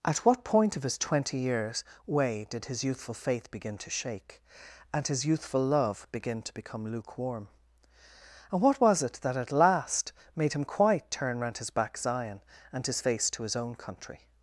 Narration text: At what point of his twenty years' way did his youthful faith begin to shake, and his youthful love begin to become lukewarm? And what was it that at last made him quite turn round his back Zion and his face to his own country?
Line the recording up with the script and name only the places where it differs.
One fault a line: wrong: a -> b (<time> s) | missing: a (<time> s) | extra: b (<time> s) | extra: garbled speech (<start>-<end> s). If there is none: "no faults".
no faults